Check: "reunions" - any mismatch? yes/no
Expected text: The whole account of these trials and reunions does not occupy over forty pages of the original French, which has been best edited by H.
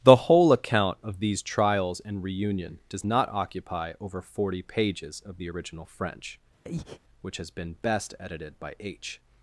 yes